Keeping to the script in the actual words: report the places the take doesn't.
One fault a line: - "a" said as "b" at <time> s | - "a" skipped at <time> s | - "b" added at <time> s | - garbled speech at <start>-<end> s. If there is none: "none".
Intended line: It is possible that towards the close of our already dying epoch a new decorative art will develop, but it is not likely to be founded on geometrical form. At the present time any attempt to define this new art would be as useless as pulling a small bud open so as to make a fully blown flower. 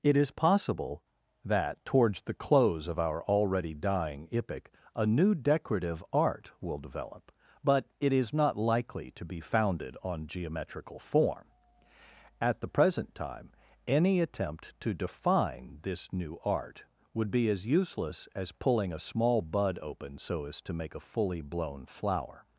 none